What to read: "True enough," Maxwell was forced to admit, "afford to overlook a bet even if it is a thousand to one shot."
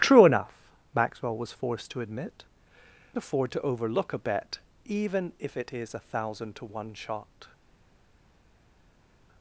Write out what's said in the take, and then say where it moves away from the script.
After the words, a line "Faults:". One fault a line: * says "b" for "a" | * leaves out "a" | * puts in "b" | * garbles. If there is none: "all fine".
"True enough," Maxwell was forced to admit, "afford to overlook a bet even if it is a thousand to one shot."
Faults:
all fine